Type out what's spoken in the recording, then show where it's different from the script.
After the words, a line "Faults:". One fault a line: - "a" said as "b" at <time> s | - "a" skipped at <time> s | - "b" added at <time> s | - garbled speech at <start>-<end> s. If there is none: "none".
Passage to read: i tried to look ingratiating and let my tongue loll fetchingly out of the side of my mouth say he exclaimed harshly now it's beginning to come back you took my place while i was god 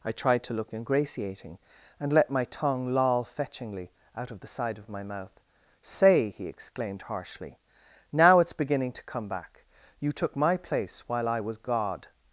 i tried to look ingratiating and let my tongue loll fetchingly out of the side of my mouth say he exclaimed harshly now it's beginning to come back you took my place while i was god
Faults:
none